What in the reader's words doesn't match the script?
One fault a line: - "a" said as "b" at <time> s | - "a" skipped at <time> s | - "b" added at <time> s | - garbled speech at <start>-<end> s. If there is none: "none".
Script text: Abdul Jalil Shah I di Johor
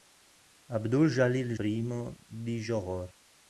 - "Shah" skipped at 1.6 s